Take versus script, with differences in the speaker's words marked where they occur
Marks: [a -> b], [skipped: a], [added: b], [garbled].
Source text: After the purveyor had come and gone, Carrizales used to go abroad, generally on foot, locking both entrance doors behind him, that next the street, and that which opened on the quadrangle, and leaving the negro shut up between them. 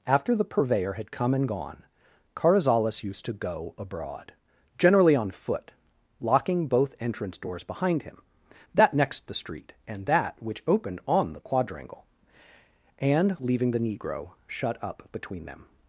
After the purveyor had come and gone, Carrizales used to go abroad, generally on foot, locking both entrance doors behind him, that next the street, and that which opened on the quadrangle, and leaving the negro shut up between them.